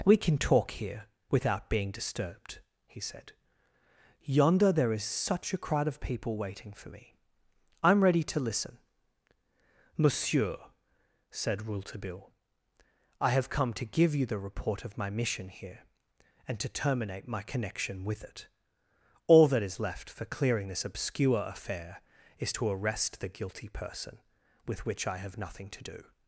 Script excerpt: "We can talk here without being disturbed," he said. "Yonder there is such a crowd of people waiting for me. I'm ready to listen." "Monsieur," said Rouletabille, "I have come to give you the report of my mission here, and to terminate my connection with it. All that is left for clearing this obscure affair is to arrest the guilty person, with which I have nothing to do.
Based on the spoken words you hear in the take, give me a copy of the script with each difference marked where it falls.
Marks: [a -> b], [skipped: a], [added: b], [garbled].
"We can talk here without being disturbed," he said. "Yonder there is such a crowd of people waiting for me. I'm ready to listen." "Monsieur," said Rouletabille, "I have come to give you the report of my mission here, and to terminate my connection with it. All that is left for clearing this obscure affair is to arrest the guilty person, with which I have nothing to do.